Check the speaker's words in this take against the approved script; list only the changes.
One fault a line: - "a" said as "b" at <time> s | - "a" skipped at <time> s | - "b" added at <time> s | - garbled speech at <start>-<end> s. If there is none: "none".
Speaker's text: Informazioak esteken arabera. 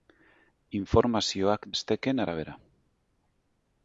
none